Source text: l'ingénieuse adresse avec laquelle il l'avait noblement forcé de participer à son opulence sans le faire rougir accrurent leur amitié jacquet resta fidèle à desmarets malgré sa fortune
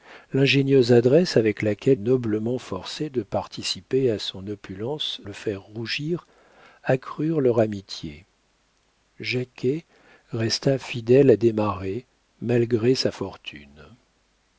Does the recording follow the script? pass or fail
fail